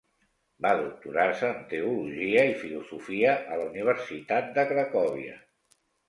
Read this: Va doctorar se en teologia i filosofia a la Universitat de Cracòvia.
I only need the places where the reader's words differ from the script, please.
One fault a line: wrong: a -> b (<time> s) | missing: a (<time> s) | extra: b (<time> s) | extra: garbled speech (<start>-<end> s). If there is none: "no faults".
no faults